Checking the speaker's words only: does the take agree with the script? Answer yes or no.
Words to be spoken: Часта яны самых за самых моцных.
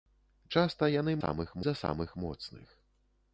yes